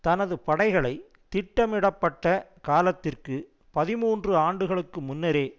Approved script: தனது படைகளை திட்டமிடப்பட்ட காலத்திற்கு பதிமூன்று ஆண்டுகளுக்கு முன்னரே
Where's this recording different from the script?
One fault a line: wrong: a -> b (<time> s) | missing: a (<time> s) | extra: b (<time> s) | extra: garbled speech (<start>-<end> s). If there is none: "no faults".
no faults